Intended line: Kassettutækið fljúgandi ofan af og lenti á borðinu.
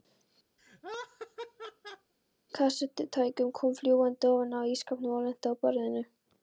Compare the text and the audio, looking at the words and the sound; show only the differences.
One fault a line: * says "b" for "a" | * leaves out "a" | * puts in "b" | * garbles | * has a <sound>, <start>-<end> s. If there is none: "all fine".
* has a laugh, 0.6-2.1 s
* puts in "kom"
* puts in "ísskápnum"